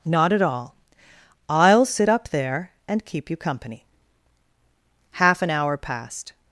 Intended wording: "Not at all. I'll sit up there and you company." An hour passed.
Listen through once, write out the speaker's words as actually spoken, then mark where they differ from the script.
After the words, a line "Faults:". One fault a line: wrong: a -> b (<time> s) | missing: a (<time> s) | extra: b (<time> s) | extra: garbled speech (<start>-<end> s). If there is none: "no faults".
"Not at all. I'll sit up there and keep you company." Half an hour passed.
Faults:
extra: keep (3.0 s)
extra: Half (5.1 s)